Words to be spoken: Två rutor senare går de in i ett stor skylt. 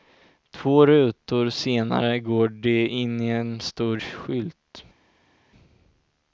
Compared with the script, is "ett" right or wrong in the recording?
wrong